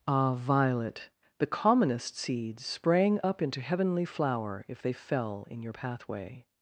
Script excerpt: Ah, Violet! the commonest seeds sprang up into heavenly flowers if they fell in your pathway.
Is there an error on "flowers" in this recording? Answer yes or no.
yes